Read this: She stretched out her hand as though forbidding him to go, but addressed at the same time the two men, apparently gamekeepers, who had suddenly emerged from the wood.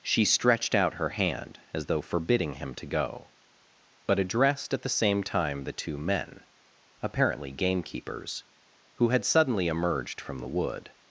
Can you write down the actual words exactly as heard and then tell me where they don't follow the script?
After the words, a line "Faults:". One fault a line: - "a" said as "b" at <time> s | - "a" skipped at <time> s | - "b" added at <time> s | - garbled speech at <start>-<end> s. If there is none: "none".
She stretched out her hand as though forbidding him to go, but addressed at the same time the two men, apparently gamekeepers, who had suddenly emerged from the wood.
Faults:
none